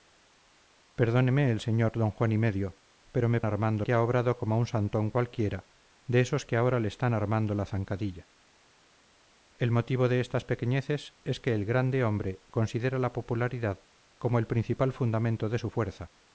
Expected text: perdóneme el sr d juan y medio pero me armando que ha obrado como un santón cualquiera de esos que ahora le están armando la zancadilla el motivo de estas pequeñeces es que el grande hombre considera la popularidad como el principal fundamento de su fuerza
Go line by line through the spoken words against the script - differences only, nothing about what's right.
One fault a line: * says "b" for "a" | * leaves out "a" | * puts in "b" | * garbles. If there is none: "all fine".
all fine